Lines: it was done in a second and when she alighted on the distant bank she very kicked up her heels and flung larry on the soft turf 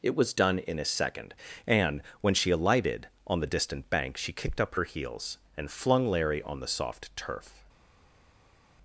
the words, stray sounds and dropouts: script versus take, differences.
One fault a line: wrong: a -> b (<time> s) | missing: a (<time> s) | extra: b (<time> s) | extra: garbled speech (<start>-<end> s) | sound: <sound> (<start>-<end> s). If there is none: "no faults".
missing: very (4.3 s)